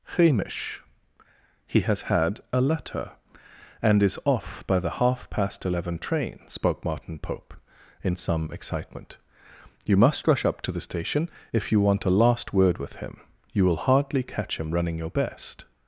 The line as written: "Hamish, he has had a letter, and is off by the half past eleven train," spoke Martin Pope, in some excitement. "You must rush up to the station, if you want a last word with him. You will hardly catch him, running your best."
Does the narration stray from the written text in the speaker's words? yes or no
no